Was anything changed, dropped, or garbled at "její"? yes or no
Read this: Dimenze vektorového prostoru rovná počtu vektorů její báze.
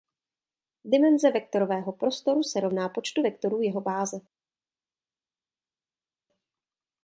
yes